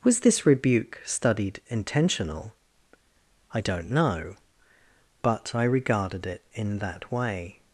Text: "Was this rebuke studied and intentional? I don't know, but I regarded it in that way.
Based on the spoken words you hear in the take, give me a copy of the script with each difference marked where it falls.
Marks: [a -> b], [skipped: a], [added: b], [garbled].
"Was this rebuke studied [skipped: and] intentional? I don't know, but I regarded it in that way.